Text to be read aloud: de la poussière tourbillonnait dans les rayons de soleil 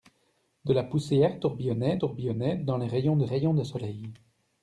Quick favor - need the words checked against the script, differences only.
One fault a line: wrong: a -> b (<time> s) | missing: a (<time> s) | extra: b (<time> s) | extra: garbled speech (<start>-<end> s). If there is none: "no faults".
extra: tourbillonnait (2.0 s)
extra: rayons de (3.2 s)